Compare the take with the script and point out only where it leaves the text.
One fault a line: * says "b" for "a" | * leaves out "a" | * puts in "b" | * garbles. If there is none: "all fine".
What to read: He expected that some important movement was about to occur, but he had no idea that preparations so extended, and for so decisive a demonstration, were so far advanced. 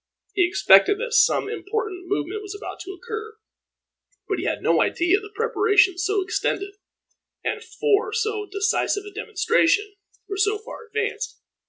all fine